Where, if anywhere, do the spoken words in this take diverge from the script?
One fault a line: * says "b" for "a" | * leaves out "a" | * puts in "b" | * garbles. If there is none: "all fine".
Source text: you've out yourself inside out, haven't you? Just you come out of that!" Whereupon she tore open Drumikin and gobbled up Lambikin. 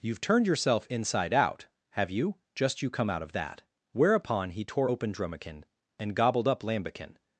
* says "turned" for "out"
* says "have" for "haven't"
* says "he" for "she"